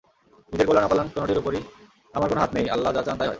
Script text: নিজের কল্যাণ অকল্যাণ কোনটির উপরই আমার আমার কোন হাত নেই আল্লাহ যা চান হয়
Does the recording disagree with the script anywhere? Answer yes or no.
yes